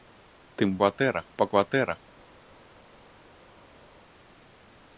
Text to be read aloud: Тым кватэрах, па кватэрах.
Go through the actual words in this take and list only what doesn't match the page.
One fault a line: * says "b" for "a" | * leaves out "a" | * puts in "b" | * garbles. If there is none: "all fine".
all fine